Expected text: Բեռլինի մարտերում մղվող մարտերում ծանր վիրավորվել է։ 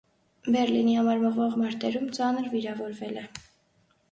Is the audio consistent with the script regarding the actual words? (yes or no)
no